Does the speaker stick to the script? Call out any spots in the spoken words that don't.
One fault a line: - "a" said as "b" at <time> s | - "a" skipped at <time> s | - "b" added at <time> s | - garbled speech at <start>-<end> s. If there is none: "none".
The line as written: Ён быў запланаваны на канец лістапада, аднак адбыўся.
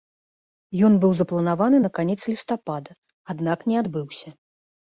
- "не" added at 3.7 s